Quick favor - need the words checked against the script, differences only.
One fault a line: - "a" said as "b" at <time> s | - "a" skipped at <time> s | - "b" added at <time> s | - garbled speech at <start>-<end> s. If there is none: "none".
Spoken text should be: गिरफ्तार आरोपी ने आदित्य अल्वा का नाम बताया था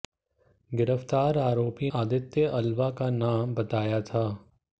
- "ने" skipped at 1.9 s